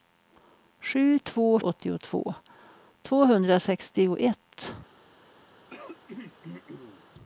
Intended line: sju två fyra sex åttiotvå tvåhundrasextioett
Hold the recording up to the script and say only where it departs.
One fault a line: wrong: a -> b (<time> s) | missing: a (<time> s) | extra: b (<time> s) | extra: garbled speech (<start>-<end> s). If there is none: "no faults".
missing: fyra sex (1.6 s)